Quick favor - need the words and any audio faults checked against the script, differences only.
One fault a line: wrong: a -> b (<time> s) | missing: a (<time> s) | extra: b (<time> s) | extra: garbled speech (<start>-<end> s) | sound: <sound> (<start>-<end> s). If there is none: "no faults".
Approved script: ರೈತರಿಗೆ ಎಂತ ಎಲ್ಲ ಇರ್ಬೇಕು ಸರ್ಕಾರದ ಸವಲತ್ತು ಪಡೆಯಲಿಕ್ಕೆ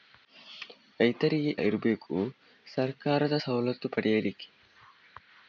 missing: ಎಂತ ಎಲ್ಲ (1.6 s)